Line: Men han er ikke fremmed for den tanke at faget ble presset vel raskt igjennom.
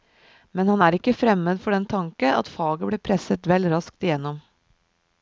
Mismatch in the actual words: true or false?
false